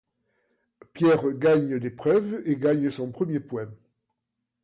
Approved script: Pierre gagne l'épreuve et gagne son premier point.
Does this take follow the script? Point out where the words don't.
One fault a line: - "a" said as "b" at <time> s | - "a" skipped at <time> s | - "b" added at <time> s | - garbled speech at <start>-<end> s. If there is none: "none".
none